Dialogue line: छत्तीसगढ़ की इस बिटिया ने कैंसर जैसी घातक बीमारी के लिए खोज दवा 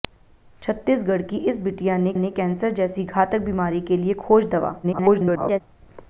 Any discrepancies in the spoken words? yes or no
yes